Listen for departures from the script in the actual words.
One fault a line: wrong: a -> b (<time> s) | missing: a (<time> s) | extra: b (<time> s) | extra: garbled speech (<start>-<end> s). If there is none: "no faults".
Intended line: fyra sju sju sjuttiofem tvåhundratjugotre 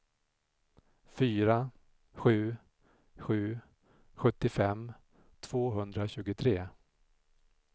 no faults